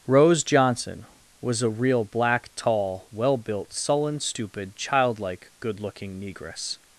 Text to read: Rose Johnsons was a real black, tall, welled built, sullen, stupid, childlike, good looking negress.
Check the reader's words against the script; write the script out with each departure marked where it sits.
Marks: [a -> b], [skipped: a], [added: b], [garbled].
Rose [Johnsons -> Johnson] was a real black, tall, [welled -> well] built, sullen, stupid, childlike, good looking negress.